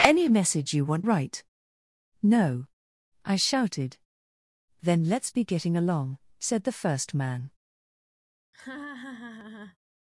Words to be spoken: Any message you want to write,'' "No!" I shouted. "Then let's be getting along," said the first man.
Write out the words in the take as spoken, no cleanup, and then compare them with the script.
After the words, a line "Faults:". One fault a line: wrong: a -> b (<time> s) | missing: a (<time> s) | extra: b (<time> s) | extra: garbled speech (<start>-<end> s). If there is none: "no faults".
Any message you want write,'' "No!" I shouted. "Then let's be getting along," said the first man.
Faults:
missing: to (1.1 s)